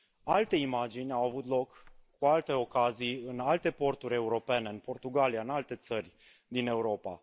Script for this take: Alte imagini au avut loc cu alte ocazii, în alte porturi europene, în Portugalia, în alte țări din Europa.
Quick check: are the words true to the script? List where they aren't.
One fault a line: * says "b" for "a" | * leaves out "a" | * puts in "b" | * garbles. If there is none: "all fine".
all fine